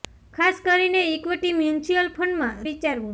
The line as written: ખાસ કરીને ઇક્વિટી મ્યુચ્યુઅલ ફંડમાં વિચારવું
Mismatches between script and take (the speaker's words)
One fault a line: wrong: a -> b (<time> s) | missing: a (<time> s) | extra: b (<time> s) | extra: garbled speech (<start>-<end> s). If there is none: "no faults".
no faults